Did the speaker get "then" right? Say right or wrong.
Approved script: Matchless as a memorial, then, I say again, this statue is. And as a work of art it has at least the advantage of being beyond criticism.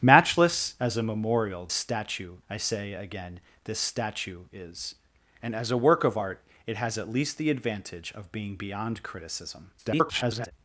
wrong